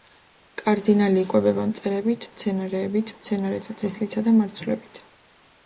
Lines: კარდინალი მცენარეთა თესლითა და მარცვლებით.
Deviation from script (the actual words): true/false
true